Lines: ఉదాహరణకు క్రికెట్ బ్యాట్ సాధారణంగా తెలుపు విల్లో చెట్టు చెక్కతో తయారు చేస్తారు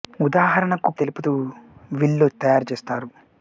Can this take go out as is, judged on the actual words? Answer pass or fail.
fail